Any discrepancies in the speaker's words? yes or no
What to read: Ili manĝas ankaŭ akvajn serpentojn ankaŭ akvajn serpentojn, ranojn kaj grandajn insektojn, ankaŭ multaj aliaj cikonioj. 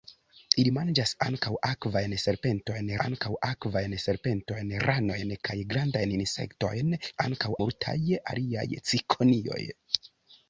no